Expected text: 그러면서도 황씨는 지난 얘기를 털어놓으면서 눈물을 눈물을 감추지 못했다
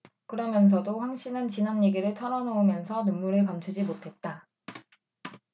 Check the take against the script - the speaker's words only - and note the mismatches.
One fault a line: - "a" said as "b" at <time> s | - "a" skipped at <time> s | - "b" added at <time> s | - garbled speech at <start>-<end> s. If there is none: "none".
- "눈물을" skipped at 3.4 s